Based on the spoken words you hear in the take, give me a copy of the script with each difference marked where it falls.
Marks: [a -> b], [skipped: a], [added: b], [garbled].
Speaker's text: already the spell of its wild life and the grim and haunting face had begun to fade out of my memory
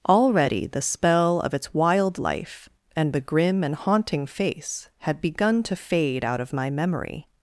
already the spell of its wild life and the grim and haunting face had begun to fade out of my memory